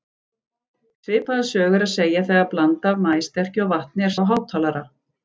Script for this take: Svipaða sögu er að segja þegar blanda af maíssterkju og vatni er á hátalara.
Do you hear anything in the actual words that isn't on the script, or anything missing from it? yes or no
no